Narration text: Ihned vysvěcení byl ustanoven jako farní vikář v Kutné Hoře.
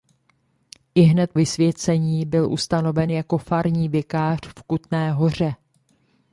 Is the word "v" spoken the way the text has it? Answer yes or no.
yes